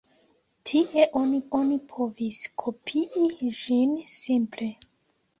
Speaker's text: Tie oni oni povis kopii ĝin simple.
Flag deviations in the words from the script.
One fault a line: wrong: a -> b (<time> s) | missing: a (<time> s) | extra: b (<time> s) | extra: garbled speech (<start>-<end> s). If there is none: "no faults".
no faults